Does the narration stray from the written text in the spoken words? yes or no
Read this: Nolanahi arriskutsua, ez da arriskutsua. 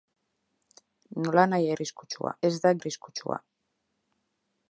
no